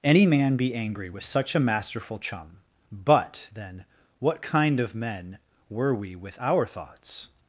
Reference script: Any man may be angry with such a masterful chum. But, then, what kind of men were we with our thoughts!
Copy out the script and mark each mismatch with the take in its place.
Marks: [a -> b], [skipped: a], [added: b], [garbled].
Any man [skipped: may] be angry with such a masterful chum. But, then, what kind of men were we with our thoughts!